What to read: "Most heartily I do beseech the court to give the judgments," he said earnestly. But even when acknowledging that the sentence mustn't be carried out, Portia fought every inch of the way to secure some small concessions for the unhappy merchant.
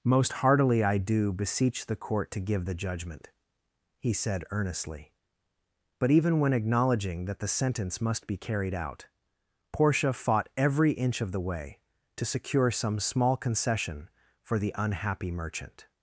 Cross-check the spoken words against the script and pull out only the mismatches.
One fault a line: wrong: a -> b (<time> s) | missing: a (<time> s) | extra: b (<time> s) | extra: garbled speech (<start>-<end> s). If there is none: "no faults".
wrong: judgments -> judgment (2.7 s)
wrong: mustn't -> must (8.0 s)
wrong: concessions -> concession (13.3 s)